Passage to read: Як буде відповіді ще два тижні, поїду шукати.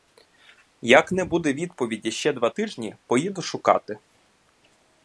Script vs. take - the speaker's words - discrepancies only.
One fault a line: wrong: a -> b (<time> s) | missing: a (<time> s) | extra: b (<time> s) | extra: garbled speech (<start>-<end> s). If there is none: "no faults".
extra: не (1.1 s)